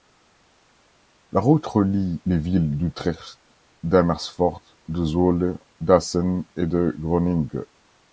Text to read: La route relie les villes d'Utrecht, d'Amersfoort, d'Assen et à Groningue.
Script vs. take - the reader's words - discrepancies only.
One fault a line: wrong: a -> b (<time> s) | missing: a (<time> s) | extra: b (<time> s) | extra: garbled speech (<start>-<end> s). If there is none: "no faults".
extra: de Zwolle (4.9 s)
wrong: à -> de (6.7 s)